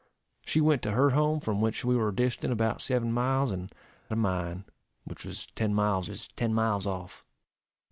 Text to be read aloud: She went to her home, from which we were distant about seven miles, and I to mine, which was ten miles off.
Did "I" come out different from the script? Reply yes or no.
yes